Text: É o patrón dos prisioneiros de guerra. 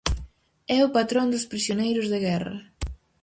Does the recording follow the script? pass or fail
pass